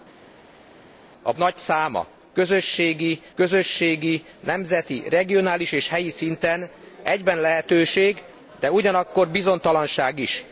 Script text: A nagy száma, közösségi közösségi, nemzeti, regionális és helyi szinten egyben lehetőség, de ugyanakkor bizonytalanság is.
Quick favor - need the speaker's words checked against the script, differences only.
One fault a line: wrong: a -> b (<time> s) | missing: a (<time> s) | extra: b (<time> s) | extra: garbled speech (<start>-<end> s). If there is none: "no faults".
no faults